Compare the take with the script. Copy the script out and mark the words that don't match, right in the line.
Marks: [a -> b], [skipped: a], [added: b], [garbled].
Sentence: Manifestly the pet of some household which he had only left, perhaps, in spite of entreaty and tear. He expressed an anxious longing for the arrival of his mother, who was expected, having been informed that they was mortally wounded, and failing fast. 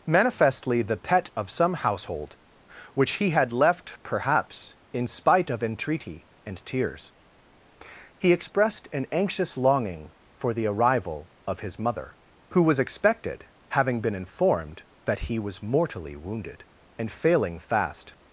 Manifestly the pet of some household which he had [skipped: only] left, perhaps, in spite of entreaty and [tear. -> tears] He expressed an anxious longing for the arrival of his mother, who was expected, having been informed that [they -> he] was mortally wounded, and failing fast.